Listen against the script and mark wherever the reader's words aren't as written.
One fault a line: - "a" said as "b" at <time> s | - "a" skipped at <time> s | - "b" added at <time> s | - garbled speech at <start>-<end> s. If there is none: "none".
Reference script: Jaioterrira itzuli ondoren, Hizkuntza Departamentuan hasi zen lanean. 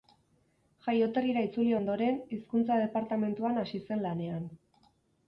none